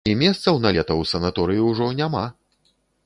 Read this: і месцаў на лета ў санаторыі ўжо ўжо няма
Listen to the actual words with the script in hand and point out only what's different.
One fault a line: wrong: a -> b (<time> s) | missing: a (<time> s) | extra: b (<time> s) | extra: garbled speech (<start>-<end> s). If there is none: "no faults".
missing: ўжо (1.9 s)